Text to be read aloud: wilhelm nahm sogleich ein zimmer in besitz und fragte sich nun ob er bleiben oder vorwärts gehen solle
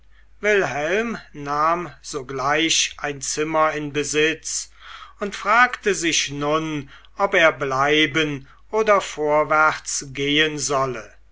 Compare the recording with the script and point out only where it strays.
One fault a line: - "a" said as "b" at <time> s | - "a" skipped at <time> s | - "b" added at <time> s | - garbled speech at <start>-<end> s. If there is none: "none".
none